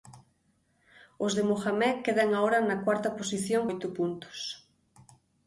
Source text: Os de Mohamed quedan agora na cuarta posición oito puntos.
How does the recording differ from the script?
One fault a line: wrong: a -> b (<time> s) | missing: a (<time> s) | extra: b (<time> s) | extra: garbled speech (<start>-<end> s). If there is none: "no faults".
no faults